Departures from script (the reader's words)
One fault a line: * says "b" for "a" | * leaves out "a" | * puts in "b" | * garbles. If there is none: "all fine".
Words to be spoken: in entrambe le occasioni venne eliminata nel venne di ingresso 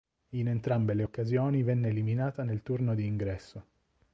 * says "turno" for "venne"